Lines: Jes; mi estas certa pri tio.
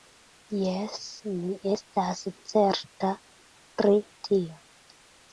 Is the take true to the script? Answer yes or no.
yes